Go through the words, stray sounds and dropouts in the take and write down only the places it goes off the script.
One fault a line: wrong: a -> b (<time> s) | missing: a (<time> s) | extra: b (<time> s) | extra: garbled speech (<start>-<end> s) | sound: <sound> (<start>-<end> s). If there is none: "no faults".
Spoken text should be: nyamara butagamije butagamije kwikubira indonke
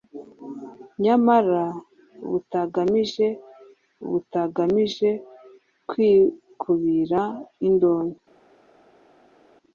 no faults